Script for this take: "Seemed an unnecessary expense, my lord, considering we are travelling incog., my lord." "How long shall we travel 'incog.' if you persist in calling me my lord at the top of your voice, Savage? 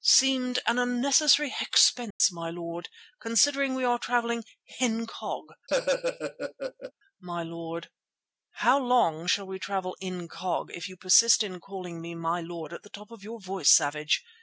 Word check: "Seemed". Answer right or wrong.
right